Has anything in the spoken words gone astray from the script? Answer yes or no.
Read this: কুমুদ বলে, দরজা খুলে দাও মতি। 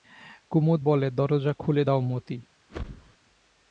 no